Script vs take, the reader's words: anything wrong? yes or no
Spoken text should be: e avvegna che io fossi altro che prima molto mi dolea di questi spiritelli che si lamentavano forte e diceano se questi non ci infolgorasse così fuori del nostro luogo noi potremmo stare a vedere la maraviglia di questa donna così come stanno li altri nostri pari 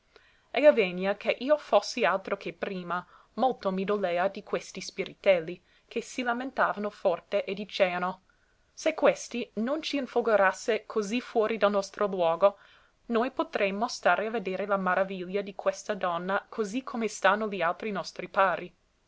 no